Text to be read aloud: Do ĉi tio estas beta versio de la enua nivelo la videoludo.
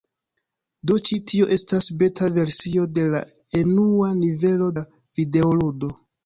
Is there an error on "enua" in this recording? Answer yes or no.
no